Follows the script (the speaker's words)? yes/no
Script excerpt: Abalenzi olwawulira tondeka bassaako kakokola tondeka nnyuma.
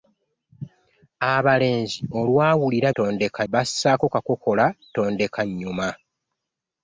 yes